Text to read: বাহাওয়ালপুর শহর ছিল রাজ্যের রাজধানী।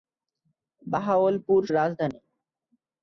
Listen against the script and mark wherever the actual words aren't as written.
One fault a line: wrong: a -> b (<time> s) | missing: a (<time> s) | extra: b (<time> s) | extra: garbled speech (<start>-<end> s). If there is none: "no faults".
missing: শহর ছিল রাজ্যের (1.6 s)